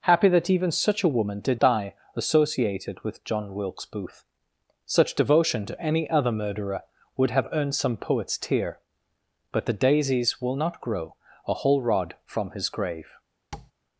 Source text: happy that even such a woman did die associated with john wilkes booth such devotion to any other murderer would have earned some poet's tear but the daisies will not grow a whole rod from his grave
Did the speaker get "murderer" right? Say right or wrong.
right